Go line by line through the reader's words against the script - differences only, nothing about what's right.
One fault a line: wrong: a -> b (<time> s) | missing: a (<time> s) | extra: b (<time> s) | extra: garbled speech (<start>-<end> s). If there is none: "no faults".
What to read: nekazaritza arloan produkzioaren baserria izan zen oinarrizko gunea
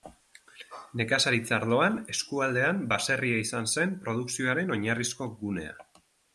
wrong: produkzioaren -> eskualdean (2.1 s)
extra: produkzioaren (4.1 s)